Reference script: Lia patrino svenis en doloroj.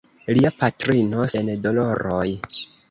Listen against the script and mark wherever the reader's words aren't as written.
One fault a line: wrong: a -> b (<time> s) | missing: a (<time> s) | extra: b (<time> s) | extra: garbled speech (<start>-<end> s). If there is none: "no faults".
missing: svenis (1.3 s)